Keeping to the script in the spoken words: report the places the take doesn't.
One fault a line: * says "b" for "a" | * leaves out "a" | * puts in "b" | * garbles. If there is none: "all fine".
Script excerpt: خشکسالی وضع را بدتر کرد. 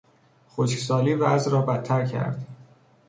all fine